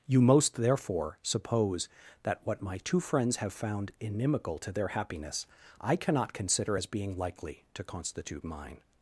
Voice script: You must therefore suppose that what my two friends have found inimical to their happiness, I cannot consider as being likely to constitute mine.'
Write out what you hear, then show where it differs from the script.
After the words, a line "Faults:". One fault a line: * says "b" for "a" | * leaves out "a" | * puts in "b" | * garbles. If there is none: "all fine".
You most therefore suppose that what my two friends have found inimical to their happiness, I cannot consider as being likely to constitute mine.'
Faults:
* says "most" for "must"